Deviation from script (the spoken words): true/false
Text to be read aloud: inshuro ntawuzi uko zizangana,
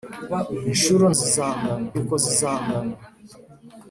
true